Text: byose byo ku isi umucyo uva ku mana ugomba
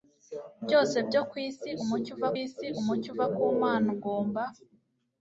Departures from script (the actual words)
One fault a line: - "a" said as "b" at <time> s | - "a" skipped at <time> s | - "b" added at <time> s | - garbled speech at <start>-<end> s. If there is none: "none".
- "isi umucyo uva" added at 2.4 s